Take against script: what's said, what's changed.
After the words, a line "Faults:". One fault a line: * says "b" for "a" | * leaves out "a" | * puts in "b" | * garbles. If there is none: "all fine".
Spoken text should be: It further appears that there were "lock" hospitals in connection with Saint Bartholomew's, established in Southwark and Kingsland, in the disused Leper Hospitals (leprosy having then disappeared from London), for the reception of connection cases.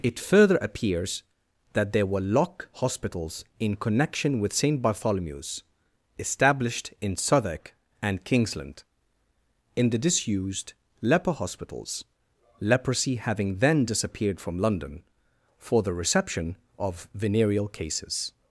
It further appears that there were "lock" hospitals in connection with Saint Bartholomew's, established in Southwark and Kingsland, in the disused Leper Hospitals (leprosy having then disappeared from London), for the reception of venereal cases.
Faults:
* says "venereal" for "connection"